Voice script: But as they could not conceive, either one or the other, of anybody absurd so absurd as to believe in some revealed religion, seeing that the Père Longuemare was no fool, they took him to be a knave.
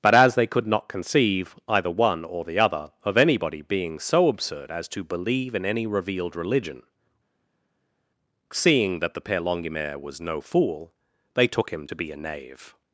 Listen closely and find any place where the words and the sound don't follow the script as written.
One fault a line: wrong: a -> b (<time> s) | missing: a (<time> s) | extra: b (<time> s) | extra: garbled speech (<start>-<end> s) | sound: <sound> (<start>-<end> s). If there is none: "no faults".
wrong: absurd -> being (3.6 s)
wrong: some -> any (5.7 s)